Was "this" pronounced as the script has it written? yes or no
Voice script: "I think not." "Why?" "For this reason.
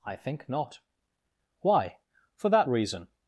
no